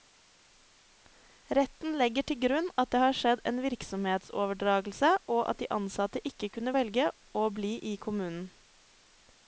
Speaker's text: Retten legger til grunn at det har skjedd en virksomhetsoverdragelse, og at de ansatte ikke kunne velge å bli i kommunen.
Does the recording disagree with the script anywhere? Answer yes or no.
no